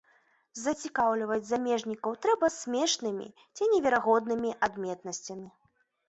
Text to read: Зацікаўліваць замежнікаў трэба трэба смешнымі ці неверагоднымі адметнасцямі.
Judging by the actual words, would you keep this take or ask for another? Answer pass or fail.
fail